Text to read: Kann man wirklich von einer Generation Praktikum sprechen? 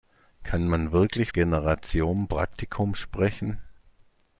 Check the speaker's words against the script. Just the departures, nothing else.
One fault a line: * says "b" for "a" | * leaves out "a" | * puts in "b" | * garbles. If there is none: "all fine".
* leaves out "von einer"